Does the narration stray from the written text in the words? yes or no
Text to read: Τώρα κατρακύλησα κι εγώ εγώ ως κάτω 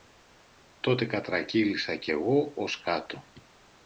yes